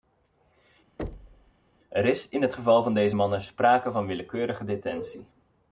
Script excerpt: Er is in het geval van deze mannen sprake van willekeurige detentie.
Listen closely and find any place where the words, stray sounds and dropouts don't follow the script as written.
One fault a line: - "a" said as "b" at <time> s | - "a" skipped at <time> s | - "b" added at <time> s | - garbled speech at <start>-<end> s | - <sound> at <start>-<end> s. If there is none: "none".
- thud at 1.0-1.5 s